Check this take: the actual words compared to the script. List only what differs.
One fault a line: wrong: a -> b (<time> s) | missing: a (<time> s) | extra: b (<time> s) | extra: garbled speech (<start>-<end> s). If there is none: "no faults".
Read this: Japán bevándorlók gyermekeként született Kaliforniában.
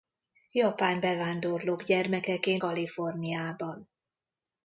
missing: született (2.6 s)